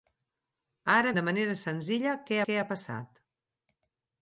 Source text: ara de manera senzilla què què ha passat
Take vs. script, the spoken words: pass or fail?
pass